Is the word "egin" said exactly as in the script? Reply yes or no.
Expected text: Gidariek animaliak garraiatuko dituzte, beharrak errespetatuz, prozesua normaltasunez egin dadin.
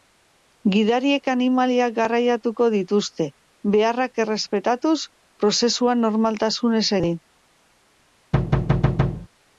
no